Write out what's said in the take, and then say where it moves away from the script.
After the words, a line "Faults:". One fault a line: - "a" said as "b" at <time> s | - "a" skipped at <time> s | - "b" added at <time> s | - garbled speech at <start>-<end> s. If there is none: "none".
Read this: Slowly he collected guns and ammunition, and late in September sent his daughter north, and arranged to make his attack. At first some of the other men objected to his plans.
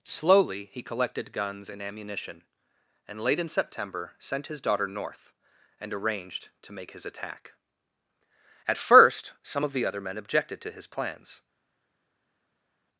Slowly he collected guns and ammunition, and late in September sent his daughter north, and arranged to make his attack. At first some of the other men objected to his plans.
Faults:
none